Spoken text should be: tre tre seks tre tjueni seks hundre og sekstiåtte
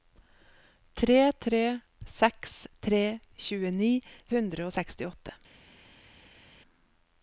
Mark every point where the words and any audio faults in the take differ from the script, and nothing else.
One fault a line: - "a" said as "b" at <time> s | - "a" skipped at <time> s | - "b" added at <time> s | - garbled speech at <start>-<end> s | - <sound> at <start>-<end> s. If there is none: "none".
- "seks" skipped at 3.9 s